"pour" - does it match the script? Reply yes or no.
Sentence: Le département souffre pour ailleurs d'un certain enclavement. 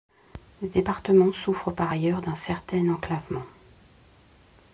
no